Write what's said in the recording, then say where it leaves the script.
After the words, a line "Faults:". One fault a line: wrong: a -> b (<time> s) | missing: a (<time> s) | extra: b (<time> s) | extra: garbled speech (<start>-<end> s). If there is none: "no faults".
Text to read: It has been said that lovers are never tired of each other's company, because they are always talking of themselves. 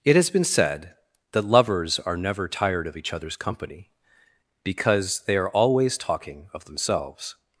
It has been said that lovers are never tired of each other's company, because they are always talking of themselves.
Faults:
no faults